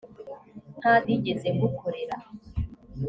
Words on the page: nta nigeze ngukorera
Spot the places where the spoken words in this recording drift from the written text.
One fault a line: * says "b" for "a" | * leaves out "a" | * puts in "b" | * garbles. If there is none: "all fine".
all fine